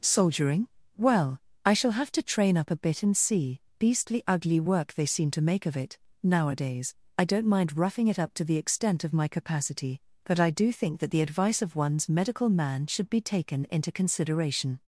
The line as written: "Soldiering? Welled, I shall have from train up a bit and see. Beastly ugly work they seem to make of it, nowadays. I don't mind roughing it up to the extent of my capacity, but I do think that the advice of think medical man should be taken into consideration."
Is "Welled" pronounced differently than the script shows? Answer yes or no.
yes